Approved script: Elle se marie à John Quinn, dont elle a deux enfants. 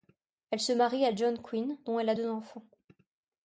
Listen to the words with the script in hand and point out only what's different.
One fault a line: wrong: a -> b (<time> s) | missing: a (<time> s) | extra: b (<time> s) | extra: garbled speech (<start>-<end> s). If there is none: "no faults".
no faults